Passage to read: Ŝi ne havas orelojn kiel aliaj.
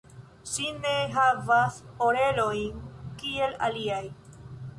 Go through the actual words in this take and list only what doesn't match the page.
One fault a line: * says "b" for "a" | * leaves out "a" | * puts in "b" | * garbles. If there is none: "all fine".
all fine